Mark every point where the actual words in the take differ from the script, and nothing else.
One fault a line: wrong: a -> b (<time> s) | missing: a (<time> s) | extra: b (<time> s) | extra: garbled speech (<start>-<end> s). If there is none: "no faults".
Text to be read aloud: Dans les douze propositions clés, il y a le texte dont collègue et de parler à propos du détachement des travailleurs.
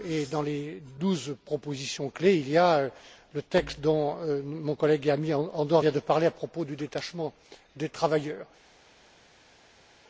extra: mon (4.4 s)
extra: ami Andor vient (5.1 s)